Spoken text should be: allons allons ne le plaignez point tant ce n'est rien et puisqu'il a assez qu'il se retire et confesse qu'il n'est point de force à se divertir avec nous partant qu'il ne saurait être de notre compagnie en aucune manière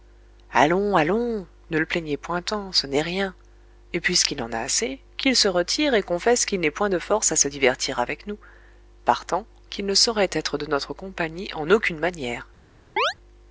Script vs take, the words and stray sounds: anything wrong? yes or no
yes